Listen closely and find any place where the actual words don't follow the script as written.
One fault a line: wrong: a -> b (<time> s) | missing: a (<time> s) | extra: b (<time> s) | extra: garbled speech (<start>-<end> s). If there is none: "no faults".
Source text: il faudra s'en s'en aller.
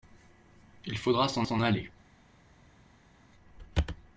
no faults